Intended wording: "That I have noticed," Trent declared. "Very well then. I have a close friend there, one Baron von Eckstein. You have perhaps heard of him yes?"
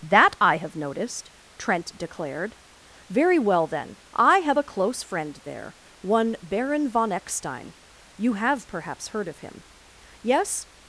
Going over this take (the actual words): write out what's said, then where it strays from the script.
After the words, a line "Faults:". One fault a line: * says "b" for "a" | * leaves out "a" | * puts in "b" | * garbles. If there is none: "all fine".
"That I have noticed," Trent declared. "Very well then. I have a close friend there, one Baron von Eckstein. You have perhaps heard of him yes?"
Faults:
all fine